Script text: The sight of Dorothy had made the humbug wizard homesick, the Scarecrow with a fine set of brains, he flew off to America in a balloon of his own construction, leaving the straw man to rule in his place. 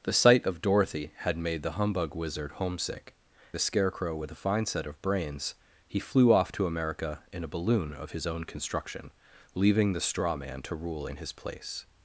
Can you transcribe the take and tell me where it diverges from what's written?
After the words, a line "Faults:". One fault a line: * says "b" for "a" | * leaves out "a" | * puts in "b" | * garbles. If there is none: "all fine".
The sight of Dorothy had made the humbug wizard homesick, the Scarecrow with a fine set of brains, he flew off to America in a balloon of his own construction, leaving the straw man to rule in his place.
Faults:
all fine